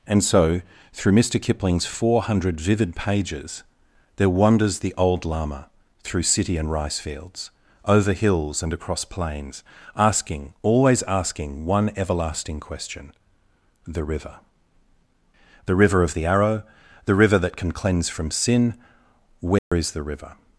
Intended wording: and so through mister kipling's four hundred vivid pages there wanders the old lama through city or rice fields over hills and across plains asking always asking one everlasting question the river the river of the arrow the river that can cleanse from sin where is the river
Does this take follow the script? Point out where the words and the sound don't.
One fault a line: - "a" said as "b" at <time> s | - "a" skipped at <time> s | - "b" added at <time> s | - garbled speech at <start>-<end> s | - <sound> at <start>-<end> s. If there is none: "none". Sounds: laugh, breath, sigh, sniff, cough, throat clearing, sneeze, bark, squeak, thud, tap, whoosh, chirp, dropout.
- "or" said as "and" at 6.6 s
- dropout at 19.6-19.7 s